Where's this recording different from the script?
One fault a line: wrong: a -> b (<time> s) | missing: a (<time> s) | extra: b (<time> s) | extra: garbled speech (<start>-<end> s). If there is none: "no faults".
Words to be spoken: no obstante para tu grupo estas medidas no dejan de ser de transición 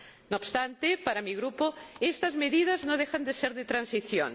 wrong: tu -> mi (1.2 s)